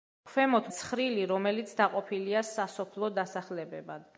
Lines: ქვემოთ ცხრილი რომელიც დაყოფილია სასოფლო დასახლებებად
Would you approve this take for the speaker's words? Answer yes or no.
yes